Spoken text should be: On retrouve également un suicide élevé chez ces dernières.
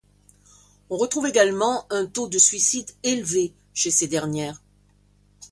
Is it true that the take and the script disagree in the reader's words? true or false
true